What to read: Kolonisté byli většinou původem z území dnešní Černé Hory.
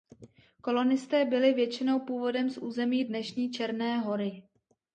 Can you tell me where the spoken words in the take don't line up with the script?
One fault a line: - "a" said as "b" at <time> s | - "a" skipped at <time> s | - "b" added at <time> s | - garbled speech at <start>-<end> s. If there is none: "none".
none